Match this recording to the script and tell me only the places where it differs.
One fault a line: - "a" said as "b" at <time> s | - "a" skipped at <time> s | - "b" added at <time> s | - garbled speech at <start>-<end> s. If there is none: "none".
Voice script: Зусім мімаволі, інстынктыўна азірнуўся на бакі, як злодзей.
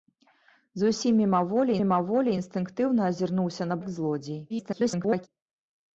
- "мімаволі" added at 1.8 s
- "бакі" skipped at 3.8 s
- garbled speech at 4.5-5.3 s